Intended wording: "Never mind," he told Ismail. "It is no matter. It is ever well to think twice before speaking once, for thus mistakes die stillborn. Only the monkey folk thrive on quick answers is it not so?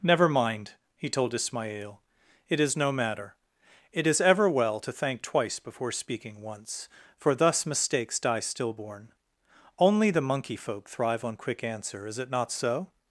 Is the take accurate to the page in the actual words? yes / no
no